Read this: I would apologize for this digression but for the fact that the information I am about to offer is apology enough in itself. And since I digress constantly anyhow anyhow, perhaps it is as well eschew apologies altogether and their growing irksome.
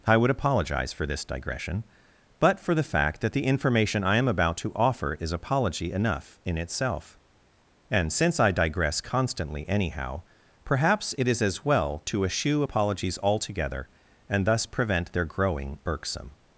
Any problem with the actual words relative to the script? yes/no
yes